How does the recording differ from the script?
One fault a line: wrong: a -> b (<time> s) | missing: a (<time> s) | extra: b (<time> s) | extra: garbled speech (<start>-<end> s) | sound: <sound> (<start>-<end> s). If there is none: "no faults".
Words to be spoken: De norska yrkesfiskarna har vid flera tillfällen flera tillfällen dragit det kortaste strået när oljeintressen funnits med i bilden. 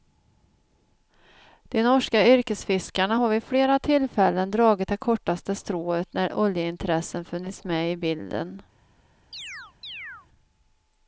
missing: flera tillfällen (4.5 s)
sound: chirp (9.3-10.3 s)